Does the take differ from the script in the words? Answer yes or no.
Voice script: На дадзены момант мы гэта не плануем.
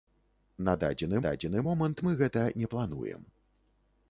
yes